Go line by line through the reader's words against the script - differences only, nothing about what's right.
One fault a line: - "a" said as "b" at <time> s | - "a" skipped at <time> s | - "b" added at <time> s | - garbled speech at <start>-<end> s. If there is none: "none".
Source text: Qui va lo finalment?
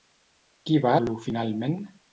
none